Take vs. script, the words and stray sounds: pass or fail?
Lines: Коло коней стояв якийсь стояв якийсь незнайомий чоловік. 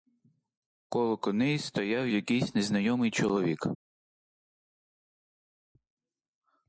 fail